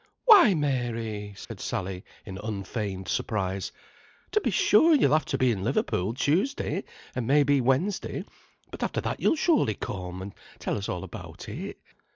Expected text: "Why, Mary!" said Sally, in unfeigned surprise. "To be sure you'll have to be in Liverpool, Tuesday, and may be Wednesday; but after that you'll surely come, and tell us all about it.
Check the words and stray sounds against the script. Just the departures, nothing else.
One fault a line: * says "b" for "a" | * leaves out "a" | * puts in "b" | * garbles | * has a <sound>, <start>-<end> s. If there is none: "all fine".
* has a dropout, 1.4-1.5 s